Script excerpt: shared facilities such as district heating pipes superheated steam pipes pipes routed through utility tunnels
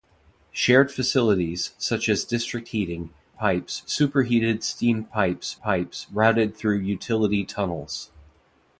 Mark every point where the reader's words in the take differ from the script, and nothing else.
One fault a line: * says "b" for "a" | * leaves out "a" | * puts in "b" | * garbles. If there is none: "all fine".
all fine